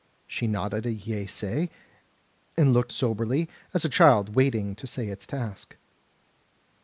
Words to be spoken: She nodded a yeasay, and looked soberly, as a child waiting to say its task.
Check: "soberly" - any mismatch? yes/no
no